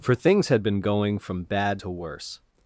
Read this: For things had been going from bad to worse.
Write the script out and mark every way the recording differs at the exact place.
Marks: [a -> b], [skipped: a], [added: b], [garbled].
For things had been going from bad to worse.